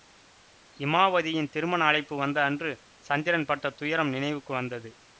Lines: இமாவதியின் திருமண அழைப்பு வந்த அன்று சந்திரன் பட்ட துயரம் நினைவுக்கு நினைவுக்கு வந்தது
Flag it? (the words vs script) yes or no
yes